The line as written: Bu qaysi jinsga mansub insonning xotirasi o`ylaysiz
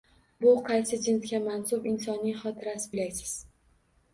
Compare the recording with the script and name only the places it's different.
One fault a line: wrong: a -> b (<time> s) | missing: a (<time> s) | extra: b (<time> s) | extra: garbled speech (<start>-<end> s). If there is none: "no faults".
no faults